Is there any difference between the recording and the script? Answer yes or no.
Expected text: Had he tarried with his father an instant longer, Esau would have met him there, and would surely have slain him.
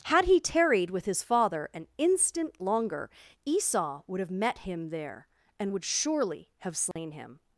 no